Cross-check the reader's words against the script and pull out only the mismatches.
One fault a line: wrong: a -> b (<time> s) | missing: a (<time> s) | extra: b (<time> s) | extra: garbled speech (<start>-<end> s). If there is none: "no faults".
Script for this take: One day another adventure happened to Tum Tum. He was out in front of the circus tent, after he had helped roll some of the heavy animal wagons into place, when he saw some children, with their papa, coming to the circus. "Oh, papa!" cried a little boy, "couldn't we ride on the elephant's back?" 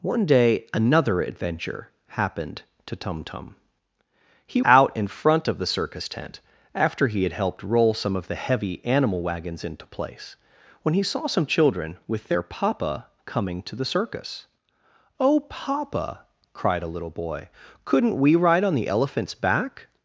missing: was (4.6 s)